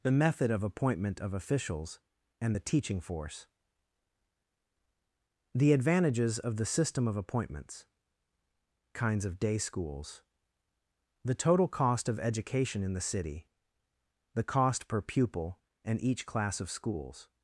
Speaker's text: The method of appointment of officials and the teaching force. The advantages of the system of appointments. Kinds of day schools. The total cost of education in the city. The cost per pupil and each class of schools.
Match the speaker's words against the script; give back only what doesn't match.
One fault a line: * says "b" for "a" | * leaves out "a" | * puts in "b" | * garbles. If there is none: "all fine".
all fine